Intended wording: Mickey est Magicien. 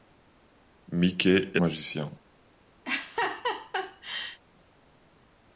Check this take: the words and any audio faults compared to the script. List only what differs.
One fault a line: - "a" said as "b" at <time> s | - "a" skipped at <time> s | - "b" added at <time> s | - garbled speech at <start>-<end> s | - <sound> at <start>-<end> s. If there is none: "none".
- laugh at 2.8-4.4 s